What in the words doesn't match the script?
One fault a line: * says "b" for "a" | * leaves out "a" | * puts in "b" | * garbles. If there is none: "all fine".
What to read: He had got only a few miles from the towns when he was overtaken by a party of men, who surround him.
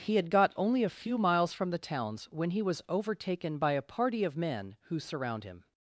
all fine